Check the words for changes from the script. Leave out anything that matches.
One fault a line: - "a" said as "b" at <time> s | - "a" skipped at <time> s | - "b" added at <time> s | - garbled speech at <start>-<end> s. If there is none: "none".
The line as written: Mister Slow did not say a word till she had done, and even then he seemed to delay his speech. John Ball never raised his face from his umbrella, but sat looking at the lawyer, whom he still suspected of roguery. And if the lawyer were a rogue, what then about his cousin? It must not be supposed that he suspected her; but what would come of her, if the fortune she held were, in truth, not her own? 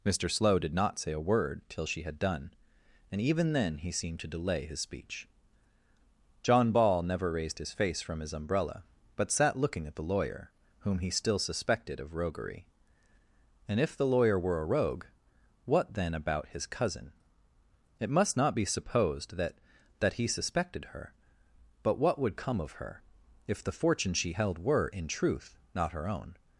- "that" added at 20.0 s